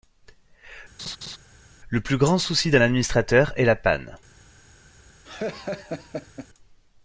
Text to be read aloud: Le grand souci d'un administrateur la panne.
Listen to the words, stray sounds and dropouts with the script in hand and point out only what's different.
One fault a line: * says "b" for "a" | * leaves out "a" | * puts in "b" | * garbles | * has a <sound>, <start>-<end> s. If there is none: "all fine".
* has a laugh, 1.0-1.4 s
* puts in "plus"
* puts in "est"
* has a laugh, 5.2-6.5 s